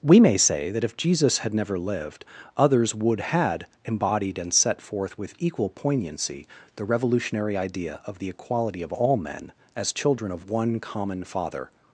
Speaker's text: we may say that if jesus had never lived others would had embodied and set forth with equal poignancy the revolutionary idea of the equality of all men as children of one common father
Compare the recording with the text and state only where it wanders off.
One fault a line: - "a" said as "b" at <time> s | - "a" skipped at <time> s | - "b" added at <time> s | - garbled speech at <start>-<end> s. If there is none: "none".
none